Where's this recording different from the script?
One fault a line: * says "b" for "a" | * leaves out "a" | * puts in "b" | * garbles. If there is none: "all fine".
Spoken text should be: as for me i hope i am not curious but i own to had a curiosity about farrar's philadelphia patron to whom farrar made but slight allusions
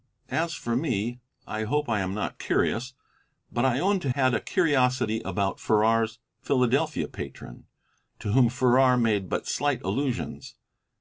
all fine